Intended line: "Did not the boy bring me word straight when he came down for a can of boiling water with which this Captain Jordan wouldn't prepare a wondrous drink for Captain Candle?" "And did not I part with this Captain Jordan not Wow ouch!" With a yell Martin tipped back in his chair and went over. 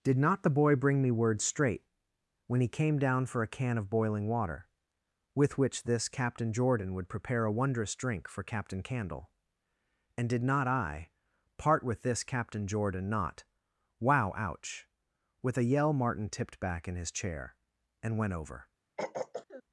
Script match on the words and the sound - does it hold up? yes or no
no